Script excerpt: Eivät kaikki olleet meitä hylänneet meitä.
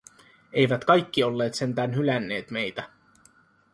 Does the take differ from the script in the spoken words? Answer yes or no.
yes